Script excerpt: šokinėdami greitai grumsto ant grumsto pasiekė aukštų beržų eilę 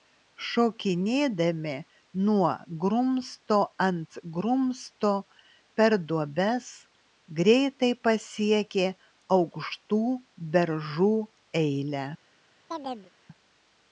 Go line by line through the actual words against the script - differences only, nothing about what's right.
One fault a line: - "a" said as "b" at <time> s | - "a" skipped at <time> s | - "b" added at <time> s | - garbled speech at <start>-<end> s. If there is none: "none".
- "greitai" said as "nuo" at 2.3 s
- "per duobes greitai" added at 5.8 s